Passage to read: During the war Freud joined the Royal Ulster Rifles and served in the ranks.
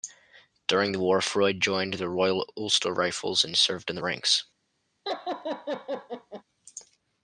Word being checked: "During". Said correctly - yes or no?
yes